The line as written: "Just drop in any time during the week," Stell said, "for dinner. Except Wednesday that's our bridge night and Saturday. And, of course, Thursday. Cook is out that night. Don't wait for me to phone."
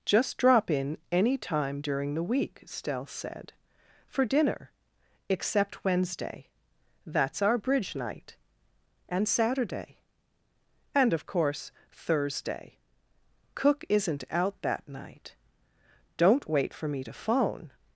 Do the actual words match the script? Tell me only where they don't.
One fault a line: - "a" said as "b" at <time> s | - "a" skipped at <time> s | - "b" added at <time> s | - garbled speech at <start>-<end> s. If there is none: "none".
- "is" said as "isn't" at 13.9 s